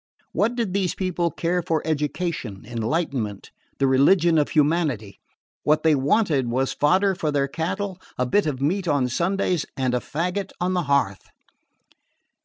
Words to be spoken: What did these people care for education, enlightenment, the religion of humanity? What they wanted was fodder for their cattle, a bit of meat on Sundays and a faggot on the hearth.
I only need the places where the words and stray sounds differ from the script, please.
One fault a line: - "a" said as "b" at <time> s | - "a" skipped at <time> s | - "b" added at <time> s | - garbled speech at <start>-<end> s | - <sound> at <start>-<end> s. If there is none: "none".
none